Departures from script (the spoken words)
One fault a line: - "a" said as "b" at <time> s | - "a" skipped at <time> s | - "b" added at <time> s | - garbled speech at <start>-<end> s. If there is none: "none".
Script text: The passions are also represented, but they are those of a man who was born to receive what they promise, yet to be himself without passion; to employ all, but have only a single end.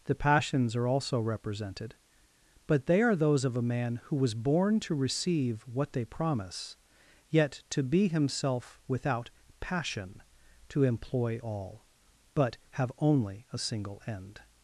none